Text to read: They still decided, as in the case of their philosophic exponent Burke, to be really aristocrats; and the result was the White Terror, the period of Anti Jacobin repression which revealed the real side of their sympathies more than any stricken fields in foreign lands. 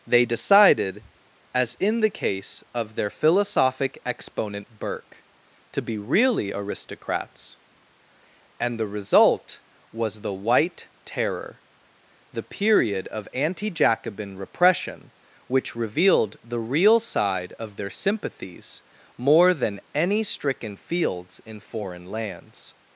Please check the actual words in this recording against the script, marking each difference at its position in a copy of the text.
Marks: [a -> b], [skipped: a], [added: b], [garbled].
They [skipped: still] decided, as in the case of their philosophic exponent Burke, to be really aristocrats; and the result was the White Terror, the period of Anti Jacobin repression which revealed the real side of their sympathies more than any stricken fields in foreign lands.